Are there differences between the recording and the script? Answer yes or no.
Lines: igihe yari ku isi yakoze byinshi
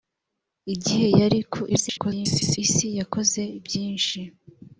yes